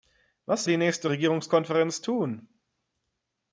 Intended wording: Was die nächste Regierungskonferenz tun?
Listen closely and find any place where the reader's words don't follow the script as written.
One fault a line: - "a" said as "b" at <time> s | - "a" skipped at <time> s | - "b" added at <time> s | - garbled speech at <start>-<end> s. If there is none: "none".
none